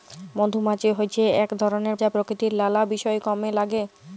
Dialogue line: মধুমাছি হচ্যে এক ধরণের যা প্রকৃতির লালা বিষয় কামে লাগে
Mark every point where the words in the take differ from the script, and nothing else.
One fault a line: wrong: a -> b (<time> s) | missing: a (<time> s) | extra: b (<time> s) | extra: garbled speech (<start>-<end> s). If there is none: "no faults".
no faults